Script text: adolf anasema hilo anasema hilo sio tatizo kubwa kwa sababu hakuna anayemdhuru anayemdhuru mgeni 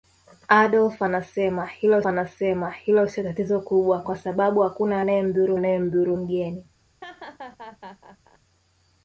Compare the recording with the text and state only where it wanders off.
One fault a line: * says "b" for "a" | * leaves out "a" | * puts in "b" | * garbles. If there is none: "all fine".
all fine